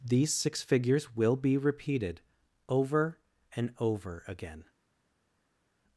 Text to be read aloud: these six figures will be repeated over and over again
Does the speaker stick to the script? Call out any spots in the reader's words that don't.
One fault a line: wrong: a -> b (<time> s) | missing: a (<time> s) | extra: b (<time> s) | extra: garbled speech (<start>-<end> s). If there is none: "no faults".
no faults